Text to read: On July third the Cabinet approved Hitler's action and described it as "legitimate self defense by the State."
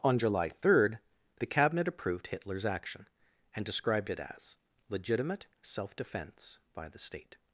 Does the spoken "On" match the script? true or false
true